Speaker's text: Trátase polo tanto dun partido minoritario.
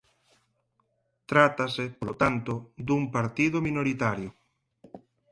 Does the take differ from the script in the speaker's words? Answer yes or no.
no